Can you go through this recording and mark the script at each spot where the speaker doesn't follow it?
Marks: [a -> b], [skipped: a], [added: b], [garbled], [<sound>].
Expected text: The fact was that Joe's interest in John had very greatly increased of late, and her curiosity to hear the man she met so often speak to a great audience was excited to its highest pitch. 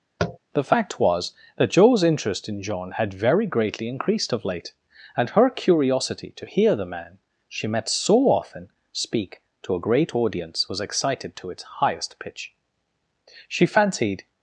[tap] The fact was that Joe's interest in John had very greatly increased of late, and her curiosity to hear the man she met so often speak to a great audience was excited to its highest pitch. [added: She fancied]